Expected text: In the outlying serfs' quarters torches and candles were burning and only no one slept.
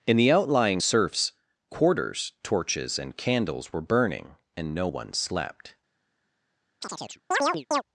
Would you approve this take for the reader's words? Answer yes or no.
no